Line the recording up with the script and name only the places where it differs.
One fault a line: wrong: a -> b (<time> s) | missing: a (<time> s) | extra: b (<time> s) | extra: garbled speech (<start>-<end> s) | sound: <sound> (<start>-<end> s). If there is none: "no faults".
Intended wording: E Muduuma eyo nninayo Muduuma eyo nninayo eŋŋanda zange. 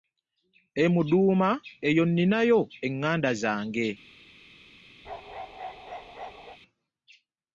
missing: Muduuma eyo nninayo (2.6 s)
sound: bark (5.0-6.6 s)